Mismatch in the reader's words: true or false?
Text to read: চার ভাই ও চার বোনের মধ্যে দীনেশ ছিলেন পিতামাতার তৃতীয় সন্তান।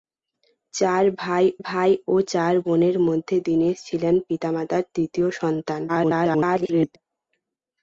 true